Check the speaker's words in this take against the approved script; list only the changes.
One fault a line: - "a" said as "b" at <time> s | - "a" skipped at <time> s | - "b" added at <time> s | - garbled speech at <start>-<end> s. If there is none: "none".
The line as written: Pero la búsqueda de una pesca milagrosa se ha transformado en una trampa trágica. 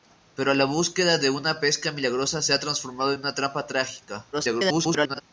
- garbled speech at 4.3-5.2 s